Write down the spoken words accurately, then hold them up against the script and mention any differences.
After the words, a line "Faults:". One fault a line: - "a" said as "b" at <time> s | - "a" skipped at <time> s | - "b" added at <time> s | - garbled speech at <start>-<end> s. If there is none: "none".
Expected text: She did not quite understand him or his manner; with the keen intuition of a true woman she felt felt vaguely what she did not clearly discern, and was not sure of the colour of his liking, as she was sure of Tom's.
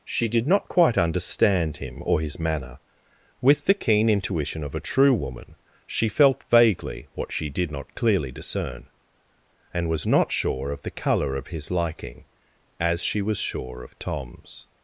She did not quite understand him or his manner; with the keen intuition of a true woman she felt vaguely what she did not clearly discern, and was not sure of the colour of his liking, as she was sure of Tom's.
Faults:
- "felt" skipped at 6.4 s